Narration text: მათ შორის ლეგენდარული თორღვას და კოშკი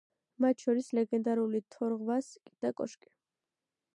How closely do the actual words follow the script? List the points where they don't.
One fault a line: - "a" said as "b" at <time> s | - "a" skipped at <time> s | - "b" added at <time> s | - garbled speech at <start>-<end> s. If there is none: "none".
none